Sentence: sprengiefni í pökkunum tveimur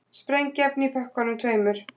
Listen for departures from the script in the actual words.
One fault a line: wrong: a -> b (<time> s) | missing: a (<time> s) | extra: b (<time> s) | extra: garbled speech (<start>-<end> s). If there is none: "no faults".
no faults